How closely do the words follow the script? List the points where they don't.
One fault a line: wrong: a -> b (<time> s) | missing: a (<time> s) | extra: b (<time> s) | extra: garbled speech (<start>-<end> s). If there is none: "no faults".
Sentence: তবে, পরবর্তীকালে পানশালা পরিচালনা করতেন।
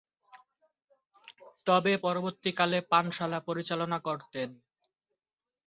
no faults